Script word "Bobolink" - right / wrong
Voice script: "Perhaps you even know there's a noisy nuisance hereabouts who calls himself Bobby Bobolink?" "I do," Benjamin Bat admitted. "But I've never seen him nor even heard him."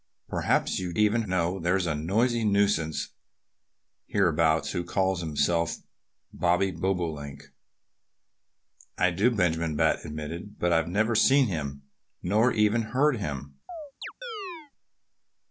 right